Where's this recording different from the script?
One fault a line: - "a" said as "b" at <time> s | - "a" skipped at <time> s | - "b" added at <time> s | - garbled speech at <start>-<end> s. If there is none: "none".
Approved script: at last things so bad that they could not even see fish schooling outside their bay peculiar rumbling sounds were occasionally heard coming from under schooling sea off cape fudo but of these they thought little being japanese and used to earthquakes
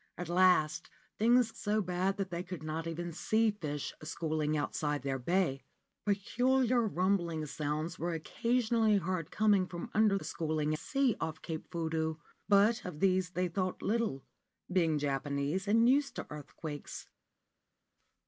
none